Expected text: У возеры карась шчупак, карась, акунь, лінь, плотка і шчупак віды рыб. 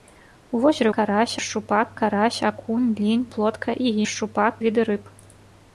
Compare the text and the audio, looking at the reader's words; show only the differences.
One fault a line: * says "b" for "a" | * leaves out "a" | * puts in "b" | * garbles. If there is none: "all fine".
all fine